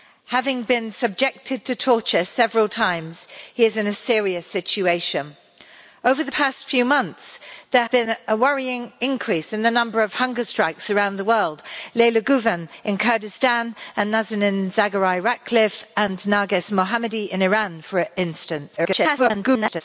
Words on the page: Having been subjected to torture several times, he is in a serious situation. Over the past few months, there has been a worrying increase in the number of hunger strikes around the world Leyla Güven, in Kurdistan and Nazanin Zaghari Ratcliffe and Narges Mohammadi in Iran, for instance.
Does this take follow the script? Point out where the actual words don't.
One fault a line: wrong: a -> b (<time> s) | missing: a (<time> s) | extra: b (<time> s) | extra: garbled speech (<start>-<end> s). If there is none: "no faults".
missing: has (7.8 s)
extra: garbled speech (18.8-19.8 s)